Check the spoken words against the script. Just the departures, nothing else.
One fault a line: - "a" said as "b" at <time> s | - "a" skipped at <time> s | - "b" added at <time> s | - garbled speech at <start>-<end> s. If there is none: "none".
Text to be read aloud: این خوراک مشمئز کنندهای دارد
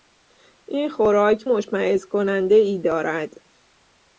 none